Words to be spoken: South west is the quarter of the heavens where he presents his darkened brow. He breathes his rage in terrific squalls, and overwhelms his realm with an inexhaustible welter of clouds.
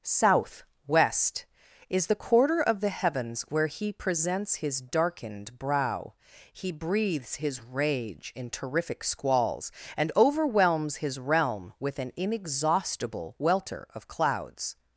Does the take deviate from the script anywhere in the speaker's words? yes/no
no